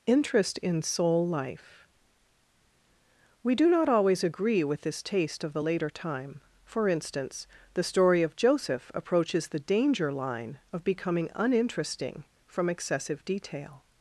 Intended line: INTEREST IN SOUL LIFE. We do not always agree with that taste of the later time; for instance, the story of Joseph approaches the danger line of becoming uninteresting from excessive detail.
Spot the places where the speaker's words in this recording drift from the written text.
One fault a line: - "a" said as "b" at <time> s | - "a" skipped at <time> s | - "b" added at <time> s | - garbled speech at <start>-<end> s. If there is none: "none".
- "that" said as "this" at 4.8 s